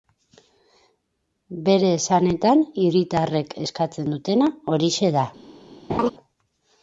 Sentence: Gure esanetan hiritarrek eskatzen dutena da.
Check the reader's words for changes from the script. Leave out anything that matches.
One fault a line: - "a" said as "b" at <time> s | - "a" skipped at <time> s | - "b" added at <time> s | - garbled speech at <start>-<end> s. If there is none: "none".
- "Gure" said as "Bere" at 1.7 s
- "horixe" added at 4.7 s